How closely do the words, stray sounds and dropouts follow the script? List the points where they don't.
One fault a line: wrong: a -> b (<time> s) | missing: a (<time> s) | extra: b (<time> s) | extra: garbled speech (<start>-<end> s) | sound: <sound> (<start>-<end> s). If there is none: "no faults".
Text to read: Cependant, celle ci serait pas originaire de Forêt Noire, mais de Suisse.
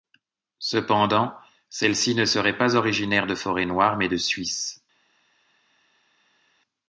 extra: ne (2.1 s)